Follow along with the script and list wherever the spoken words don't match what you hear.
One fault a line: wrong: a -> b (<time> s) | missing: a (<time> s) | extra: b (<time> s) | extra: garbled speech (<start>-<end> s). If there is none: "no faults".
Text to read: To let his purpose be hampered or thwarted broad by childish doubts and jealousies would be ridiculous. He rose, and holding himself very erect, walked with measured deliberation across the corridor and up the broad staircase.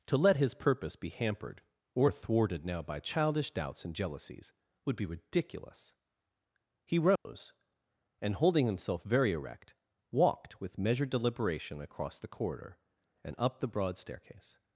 wrong: broad -> now (2.6 s)